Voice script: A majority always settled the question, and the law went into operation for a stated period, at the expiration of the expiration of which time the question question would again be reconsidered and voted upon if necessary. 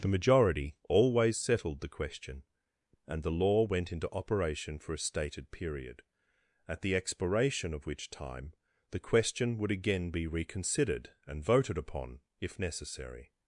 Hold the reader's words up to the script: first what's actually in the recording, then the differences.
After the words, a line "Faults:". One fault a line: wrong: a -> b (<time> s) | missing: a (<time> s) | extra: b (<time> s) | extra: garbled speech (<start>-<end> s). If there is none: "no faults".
The majority always settled the question, and the law went into operation for a stated period, at the expiration of which time the question would again be reconsidered and voted upon if necessary.
Faults:
wrong: A -> The (0.0 s)
missing: the expiration of (7.8 s)
missing: question (9.6 s)